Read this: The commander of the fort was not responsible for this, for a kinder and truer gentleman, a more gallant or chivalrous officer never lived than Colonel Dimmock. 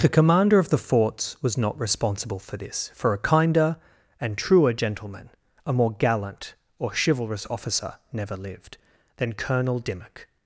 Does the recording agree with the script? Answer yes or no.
no